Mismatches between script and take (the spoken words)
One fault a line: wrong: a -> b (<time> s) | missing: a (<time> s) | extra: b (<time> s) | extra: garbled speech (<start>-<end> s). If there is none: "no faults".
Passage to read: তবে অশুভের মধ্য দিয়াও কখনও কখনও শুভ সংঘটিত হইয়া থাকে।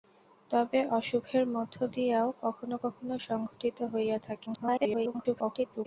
missing: শুভ (3.2 s)
extra: garbled speech (4.5-5.9 s)